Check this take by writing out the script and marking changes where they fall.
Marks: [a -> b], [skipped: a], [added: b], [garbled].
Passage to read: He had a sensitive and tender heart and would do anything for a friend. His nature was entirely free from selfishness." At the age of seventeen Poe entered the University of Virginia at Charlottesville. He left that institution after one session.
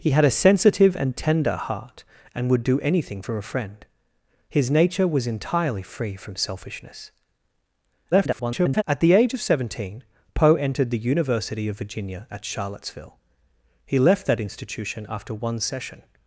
He had a sensitive and tender heart and would do anything for a friend. His nature was entirely free from selfishness." [garbled] At the age of seventeen Poe entered the University of Virginia at Charlottesville. He left that institution after one session.